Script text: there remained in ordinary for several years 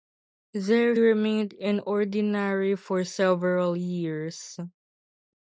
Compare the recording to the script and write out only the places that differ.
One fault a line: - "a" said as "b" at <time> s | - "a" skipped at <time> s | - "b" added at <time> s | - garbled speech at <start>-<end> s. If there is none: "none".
none